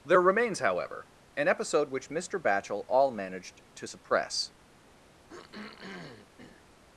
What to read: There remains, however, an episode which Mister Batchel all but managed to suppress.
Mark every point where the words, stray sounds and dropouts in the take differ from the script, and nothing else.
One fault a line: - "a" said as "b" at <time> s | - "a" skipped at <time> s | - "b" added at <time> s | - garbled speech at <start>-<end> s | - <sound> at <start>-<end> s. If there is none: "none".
- "but" skipped at 3.1 s
- throat clearing at 5.3-6.6 s